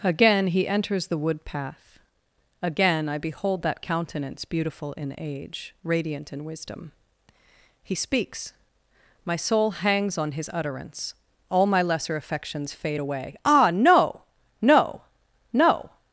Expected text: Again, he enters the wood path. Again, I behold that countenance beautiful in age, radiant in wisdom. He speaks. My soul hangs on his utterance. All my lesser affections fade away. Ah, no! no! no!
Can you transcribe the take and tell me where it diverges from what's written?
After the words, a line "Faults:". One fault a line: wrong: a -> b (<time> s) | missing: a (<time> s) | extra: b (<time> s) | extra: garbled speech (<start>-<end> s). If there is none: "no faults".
Again, he enters the wood path. Again, I behold that countenance beautiful in age, radiant in wisdom. He speaks. My soul hangs on his utterance. All my lesser affections fade away. Ah, no! no! no!
Faults:
no faults